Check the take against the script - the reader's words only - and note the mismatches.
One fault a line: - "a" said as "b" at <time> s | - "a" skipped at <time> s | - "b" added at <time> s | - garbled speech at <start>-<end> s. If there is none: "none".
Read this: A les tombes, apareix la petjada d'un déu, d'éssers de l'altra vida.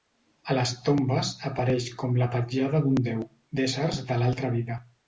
- "com" added at 2.0 s